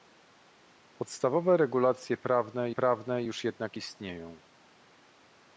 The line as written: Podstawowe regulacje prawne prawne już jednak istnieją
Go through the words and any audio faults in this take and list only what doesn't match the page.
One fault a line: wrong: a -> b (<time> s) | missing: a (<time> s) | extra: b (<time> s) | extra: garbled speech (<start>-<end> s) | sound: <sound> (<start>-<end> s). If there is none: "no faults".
no faults